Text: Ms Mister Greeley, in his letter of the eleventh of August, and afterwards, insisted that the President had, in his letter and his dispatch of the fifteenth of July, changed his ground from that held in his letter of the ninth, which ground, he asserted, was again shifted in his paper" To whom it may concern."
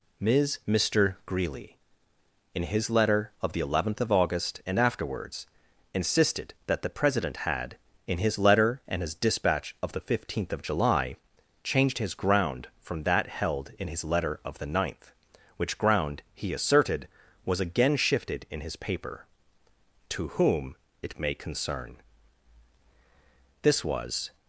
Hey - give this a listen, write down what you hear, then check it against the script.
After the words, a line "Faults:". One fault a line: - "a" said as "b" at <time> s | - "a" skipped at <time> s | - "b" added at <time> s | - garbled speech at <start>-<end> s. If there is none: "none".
Ms Mister Greeley, in his letter of the eleventh of August, and afterwards, insisted that the President had, in his letter and his dispatch of the fifteenth of July, changed his ground from that held in his letter of the ninth, which ground, he asserted, was again shifted in his paper" To whom it may concern." This was
Faults:
- "This was" added at 23.6 s